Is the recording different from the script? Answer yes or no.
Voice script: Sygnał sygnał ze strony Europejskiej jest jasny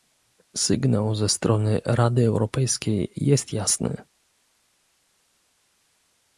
yes